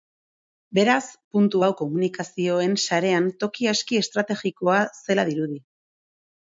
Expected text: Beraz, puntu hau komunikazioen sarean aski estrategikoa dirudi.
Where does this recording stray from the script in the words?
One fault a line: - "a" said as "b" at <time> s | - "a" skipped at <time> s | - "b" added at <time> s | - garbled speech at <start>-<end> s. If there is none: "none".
- "toki" added at 3.5 s
- "zela" added at 5.0 s